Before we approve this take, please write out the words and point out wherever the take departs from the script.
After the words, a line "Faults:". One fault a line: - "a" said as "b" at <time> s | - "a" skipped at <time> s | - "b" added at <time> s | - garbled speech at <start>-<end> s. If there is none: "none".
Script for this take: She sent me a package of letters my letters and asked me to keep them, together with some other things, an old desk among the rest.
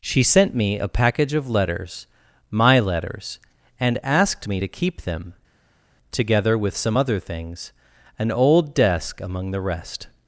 She sent me a package of letters my letters and asked me to keep them, together with some other things, an old desk among the rest.
Faults:
none